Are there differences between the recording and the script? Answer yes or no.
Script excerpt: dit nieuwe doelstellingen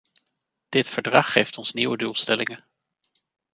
yes